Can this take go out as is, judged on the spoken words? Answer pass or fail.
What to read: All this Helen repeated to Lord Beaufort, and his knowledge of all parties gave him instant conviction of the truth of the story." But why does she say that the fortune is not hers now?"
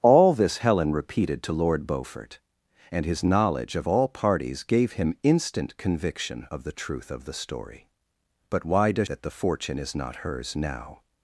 fail